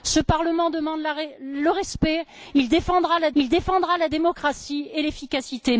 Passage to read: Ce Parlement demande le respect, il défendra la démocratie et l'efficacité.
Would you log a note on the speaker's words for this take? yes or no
yes